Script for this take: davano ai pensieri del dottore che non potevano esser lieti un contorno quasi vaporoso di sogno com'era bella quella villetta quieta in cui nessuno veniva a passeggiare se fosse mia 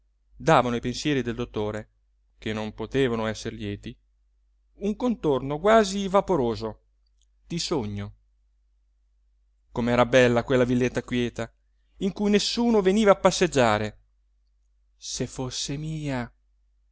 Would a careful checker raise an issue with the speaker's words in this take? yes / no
no